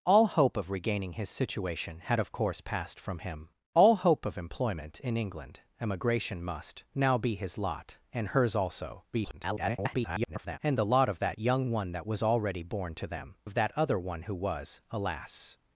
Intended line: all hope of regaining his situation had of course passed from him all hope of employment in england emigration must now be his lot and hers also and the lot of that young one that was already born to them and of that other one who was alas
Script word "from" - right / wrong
right